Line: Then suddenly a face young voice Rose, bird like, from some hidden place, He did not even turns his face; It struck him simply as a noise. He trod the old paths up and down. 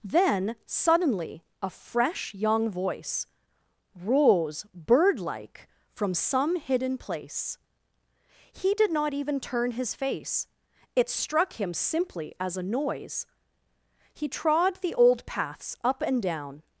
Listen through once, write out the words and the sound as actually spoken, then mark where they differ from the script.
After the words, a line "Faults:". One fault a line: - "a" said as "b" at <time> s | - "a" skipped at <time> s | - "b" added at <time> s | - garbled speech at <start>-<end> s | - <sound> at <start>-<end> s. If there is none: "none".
Then suddenly a fresh young voice Rose, bird like, from some hidden place, He did not even turn his face; It struck him simply as a noise. He trod the old paths up and down.
Faults:
- "face" said as "fresh" at 1.7 s
- "turns" said as "turn" at 9.4 s